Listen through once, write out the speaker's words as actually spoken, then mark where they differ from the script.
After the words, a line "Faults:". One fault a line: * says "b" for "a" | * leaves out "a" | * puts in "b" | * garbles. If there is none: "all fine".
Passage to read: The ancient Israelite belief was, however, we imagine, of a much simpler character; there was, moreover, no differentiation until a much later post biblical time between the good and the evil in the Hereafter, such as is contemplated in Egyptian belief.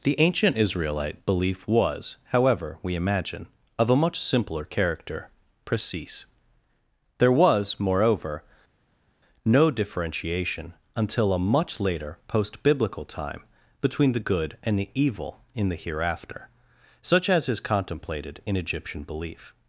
The ancient Israelite belief was, however, we imagine, of a much simpler character; precise there was, moreover, no differentiation until a much later post biblical time between the good and the evil in the Hereafter, such as is contemplated in Egyptian belief.
Faults:
* puts in "precise"